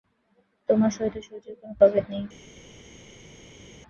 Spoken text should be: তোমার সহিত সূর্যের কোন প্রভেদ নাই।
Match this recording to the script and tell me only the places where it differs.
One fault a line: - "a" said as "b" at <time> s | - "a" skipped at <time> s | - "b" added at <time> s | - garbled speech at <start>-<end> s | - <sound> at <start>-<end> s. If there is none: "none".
none